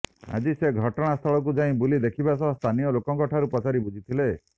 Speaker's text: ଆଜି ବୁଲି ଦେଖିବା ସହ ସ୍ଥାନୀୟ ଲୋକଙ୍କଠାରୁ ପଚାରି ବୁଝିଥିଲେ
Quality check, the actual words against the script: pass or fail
fail